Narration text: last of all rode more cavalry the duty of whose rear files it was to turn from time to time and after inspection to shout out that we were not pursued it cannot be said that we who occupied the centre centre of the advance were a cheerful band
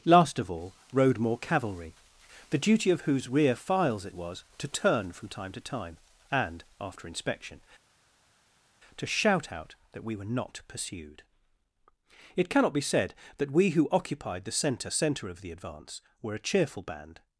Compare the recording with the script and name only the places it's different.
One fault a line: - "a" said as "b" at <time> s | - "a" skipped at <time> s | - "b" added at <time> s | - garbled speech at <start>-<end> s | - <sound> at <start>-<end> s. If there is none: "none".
none